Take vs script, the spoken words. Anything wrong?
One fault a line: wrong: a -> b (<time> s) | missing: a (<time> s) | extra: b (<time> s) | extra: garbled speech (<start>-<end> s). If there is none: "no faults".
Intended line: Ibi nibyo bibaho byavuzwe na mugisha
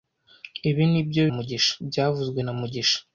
wrong: bibaho -> mugisha (1.3 s)